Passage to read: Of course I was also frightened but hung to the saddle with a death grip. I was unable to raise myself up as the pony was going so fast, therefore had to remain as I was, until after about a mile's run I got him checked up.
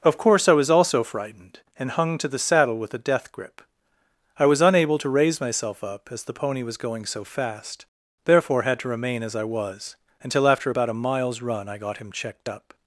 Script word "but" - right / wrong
wrong